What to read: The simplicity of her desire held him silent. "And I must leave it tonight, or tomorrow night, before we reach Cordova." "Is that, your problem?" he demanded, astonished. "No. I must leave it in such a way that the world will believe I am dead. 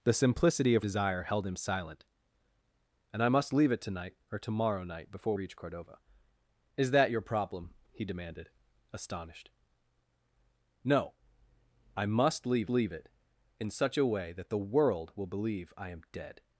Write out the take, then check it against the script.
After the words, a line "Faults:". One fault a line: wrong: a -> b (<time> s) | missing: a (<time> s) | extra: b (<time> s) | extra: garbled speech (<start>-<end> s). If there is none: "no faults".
The simplicity of desire held him silent. "And I must leave it tonight, or tomorrow night, before reach Cordova." "Is that, your problem?" he demanded, astonished. "No. I must leave leave it in such a way that the world will believe I am dead.
Faults:
missing: her (0.8 s)
missing: we (5.4 s)
extra: leave (12.7 s)